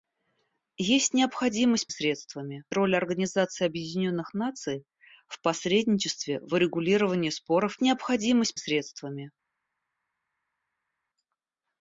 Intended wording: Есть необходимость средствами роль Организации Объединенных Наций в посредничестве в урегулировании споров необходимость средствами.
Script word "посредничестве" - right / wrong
right